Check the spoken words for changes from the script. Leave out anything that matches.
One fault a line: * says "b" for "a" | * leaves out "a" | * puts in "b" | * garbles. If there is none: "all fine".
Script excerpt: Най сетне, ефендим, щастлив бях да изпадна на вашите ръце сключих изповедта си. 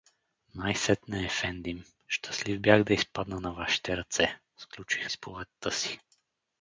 all fine